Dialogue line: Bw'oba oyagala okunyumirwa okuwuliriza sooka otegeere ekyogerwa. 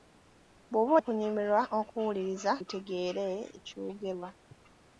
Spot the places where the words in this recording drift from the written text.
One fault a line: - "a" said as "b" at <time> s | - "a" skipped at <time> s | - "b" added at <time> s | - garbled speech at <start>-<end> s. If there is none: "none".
- "oyagala" skipped at 0.9 s
- "sooka" skipped at 2.5 s